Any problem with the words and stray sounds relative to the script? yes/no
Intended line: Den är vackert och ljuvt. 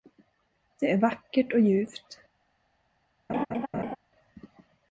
yes